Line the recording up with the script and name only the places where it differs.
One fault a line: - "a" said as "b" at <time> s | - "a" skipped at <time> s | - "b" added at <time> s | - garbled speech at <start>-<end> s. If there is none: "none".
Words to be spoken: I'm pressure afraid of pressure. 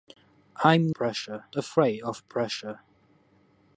none